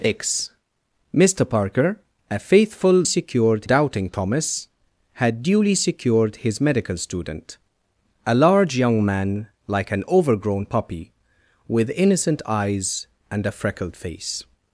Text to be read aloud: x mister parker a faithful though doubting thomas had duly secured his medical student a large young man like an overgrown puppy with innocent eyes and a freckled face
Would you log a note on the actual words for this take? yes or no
yes